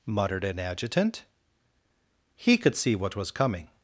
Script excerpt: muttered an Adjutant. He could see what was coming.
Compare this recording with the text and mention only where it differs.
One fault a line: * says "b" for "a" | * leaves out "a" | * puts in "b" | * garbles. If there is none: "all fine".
all fine